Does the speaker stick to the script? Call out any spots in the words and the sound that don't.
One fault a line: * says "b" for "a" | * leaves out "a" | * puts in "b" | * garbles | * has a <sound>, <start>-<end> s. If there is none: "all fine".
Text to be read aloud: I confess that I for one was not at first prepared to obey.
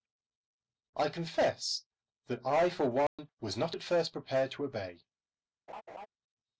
* has a dropout, 3.1-3.2 s
* has a laugh, 5.7-6.1 s